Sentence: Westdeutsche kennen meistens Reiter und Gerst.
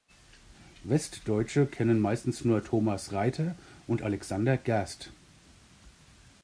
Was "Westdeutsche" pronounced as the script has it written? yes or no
yes